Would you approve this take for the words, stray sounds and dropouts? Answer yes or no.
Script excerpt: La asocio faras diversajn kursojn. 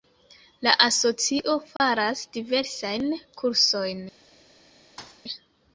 no